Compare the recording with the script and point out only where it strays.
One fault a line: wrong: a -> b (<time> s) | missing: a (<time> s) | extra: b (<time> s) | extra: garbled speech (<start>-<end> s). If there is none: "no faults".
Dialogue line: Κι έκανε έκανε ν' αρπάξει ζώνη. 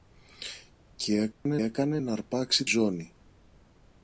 no faults